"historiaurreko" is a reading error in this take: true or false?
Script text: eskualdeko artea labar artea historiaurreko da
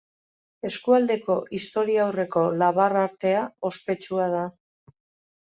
true